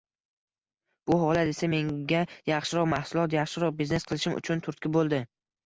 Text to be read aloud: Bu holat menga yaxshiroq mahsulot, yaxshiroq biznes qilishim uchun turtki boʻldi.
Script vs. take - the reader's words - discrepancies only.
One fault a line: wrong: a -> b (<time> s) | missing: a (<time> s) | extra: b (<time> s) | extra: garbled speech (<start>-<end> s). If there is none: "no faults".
extra: esa (1.5 s)